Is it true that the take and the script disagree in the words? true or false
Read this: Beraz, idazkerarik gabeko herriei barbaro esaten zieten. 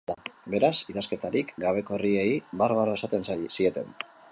false